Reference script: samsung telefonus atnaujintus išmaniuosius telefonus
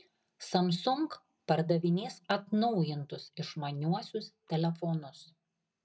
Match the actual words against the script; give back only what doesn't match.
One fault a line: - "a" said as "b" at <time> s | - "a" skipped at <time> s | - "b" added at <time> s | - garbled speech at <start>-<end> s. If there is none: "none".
- "telefonus" said as "pardavinės" at 1.5 s